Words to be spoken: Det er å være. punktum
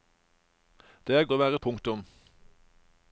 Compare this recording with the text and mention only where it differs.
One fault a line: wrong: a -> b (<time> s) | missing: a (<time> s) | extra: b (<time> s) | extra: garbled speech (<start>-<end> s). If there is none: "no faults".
no faults